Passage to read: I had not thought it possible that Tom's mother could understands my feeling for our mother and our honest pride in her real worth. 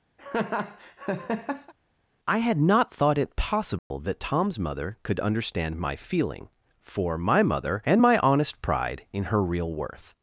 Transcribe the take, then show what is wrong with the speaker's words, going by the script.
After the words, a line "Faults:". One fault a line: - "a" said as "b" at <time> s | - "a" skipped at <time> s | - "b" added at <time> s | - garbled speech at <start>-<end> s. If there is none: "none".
I had not thought it possible that Tom's mother could understand my feeling for my mother and my honest pride in her real worth.
Faults:
- "understands" said as "understand" at 5.2 s
- "our" said as "my" at 7.2 s
- "our" said as "my" at 8.0 s